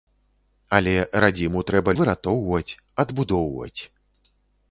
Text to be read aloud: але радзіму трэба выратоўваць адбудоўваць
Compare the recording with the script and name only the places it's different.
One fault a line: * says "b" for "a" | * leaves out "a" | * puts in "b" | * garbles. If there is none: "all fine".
all fine